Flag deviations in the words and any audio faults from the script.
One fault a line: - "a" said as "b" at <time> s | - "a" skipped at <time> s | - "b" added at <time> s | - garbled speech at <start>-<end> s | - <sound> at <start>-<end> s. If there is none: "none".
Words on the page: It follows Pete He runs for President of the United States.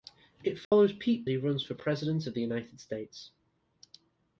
- dropout at 0.6-0.7 s